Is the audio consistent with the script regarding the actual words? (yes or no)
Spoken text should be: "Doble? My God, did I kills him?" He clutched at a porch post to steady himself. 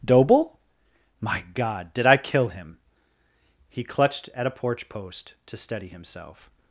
no